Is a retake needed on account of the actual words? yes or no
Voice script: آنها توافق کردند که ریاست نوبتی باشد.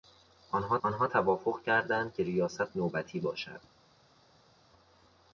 yes